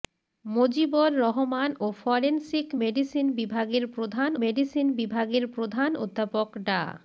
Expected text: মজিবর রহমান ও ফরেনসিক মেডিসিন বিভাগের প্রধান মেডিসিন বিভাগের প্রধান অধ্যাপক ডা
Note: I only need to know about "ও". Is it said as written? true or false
true